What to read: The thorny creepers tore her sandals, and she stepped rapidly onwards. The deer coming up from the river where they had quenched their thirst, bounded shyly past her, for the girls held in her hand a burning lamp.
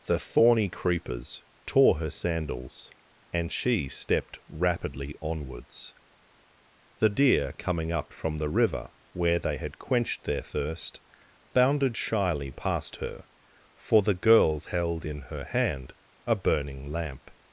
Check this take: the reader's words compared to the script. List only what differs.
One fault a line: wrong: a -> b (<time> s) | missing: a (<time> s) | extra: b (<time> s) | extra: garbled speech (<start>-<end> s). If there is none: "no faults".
no faults